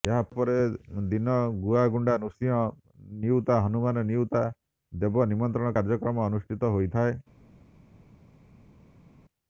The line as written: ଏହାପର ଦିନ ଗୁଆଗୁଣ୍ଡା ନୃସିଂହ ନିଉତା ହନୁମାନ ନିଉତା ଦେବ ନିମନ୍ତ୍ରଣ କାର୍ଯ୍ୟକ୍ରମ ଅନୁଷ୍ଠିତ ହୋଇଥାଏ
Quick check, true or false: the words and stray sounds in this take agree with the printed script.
true